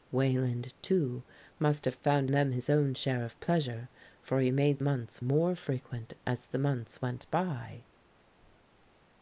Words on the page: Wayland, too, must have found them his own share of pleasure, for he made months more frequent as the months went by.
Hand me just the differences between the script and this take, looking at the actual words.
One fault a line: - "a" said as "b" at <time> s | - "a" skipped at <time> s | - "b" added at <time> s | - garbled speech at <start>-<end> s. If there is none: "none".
none